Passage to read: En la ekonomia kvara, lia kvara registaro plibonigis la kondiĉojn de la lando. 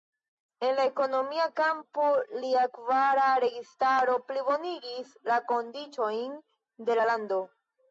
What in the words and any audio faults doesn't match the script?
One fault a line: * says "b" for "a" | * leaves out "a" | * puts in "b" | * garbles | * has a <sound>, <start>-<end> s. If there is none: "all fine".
* says "kampo" for "kvara"